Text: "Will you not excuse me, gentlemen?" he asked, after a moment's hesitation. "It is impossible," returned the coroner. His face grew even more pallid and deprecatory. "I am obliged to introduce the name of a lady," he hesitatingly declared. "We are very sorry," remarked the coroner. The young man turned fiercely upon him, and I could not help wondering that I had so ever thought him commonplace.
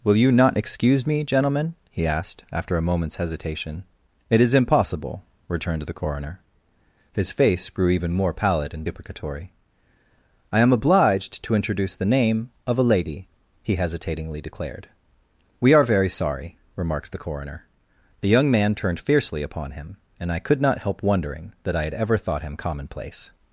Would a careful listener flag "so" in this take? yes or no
yes